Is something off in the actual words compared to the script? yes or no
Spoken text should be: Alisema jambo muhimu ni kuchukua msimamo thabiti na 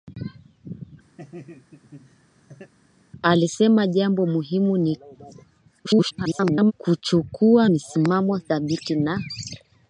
yes